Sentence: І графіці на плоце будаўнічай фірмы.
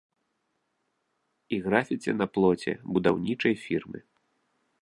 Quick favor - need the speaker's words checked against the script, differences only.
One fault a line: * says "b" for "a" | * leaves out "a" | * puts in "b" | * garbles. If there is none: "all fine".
all fine